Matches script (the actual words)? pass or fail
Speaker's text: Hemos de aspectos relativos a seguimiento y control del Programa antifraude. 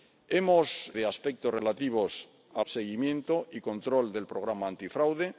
pass